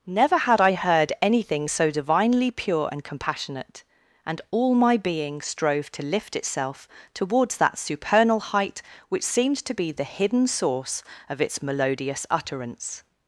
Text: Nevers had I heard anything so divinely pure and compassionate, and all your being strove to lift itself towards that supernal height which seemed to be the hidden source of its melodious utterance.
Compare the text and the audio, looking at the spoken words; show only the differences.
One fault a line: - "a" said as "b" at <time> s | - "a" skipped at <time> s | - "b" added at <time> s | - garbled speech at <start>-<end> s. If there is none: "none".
- "Nevers" said as "Never" at 0.1 s
- "your" said as "my" at 4.7 s